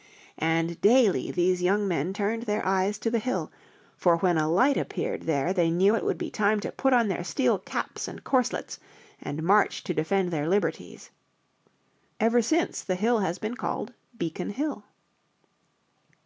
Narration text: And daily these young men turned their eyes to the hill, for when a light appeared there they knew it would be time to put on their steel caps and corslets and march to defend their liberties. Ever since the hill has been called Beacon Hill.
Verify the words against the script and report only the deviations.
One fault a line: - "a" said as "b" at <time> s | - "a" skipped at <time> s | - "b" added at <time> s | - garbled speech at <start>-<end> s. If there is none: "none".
none